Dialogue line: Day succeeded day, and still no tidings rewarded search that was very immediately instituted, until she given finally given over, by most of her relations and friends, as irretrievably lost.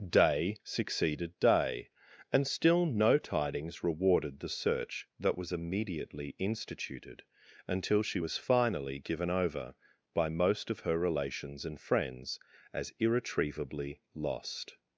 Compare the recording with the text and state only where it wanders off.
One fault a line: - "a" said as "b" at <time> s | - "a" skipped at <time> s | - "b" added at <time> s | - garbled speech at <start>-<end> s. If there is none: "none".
- "the" added at 4.4 s
- "very" skipped at 5.5 s
- "given" said as "was" at 8.2 s